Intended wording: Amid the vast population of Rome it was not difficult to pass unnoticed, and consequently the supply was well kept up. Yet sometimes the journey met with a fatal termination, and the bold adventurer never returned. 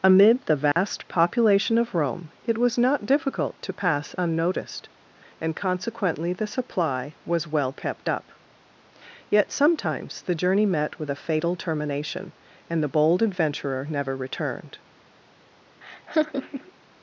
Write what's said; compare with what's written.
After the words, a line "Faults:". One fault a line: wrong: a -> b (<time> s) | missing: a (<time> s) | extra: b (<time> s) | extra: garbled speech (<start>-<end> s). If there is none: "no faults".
Amid the vast population of Rome it was not difficult to pass unnoticed, and consequently the supply was well kept up. Yet sometimes the journey met with a fatal termination, and the bold adventurer never returned.
Faults:
no faults